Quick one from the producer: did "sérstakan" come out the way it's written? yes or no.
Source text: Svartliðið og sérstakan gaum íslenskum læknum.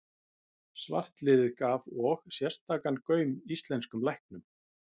yes